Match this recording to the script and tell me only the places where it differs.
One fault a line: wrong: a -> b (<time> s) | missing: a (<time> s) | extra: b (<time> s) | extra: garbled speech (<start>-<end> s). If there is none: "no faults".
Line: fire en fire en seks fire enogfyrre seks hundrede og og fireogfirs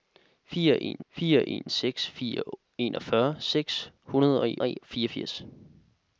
no faults